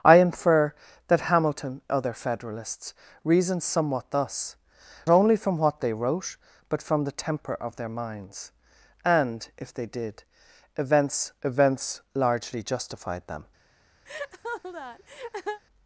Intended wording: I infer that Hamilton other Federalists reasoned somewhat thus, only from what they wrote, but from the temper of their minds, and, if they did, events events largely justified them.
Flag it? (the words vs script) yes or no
no